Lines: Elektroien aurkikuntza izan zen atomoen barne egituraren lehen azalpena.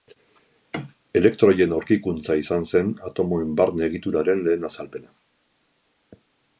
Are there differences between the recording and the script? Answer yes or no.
no